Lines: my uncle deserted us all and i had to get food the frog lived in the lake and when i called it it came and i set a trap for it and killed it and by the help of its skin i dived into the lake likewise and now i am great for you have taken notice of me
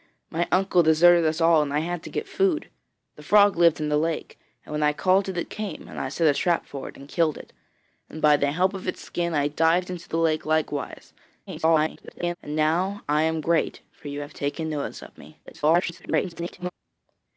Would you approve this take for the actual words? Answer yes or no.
no